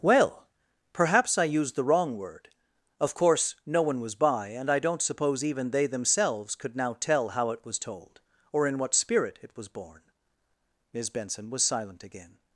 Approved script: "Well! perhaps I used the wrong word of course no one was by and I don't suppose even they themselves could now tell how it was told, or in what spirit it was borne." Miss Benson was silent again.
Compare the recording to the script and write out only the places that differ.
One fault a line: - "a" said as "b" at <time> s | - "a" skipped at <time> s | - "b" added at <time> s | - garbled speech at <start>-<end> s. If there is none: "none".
none